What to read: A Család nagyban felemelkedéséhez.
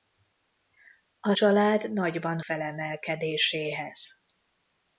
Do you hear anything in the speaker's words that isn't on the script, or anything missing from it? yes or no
no